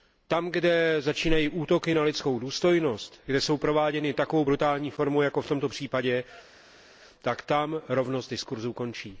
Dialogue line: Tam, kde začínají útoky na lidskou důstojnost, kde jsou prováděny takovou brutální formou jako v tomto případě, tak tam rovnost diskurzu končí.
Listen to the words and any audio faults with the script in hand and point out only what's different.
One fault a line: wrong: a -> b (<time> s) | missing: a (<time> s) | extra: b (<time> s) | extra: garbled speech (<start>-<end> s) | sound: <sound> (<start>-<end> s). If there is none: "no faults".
no faults